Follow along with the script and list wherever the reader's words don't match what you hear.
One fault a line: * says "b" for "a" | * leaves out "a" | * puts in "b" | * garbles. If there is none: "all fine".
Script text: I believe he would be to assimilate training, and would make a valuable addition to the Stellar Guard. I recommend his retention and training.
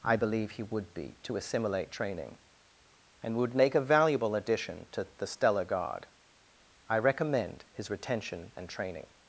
all fine